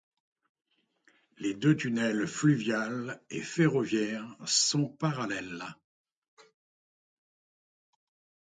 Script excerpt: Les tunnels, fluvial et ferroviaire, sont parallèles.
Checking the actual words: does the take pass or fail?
fail